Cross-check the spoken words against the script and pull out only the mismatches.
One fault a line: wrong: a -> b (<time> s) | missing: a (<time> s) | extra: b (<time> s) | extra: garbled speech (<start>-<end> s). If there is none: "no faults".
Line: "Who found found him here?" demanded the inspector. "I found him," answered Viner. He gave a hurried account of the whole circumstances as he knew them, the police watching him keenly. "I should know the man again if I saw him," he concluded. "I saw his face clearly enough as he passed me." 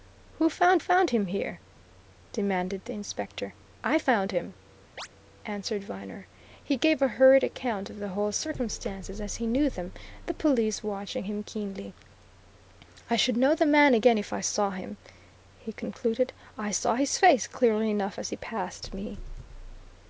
no faults